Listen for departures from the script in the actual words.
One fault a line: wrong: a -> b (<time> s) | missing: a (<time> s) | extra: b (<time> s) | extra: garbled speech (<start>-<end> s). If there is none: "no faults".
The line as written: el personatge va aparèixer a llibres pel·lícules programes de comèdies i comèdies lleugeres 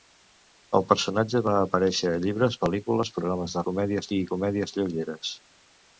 no faults